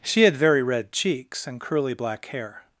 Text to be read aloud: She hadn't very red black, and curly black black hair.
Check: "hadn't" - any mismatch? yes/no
yes